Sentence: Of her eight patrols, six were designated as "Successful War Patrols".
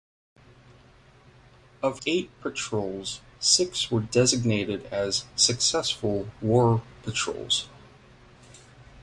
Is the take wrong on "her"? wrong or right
wrong